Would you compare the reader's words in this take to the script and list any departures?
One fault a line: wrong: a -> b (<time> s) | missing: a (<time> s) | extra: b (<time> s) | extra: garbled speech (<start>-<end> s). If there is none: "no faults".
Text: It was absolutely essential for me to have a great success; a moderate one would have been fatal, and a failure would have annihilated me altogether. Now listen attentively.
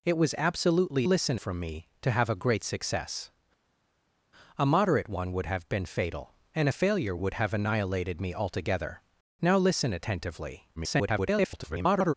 wrong: essential -> listen (1.0 s)
extra: garbled speech (10.8-12.1 s)